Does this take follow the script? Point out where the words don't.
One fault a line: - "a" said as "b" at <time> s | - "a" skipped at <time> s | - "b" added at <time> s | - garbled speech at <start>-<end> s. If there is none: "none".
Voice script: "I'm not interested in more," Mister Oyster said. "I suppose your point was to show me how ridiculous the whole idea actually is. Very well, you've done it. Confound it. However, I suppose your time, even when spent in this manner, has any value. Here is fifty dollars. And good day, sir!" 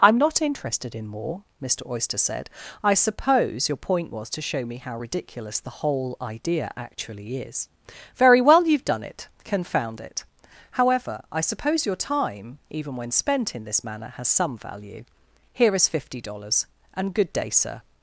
- "any" said as "some" at 14.3 s